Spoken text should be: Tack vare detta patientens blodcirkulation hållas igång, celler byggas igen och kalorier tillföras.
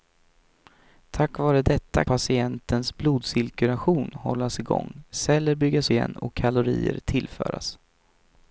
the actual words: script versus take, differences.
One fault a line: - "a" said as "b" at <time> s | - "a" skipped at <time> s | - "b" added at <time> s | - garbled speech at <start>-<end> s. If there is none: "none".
none